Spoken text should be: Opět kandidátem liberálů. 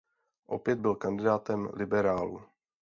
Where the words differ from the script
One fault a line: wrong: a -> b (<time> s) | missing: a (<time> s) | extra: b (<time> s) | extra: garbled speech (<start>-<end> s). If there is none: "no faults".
extra: byl (0.8 s)